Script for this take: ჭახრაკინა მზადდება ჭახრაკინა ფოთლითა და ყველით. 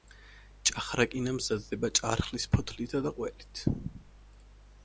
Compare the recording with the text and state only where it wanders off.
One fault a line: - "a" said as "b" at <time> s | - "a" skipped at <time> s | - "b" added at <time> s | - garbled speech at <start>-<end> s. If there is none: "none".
- "ჭახრაკინა" said as "ჭარხლის" at 2.0 s